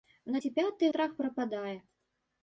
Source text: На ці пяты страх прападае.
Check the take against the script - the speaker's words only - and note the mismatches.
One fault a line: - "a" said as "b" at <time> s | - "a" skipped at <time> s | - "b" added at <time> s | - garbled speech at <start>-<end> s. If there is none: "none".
none